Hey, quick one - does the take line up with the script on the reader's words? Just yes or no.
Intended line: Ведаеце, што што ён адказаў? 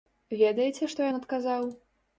no